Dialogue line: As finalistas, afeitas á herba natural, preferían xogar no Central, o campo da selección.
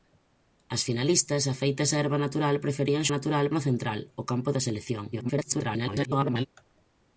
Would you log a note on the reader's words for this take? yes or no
yes